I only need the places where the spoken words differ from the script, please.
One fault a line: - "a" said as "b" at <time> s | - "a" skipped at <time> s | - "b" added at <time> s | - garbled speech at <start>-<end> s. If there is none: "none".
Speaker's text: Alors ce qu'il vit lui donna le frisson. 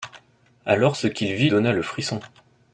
- "lui" skipped at 1.5 s